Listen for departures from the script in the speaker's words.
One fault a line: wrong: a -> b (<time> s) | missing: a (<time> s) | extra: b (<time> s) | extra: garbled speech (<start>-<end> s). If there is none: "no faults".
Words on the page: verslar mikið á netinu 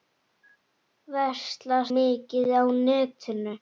no faults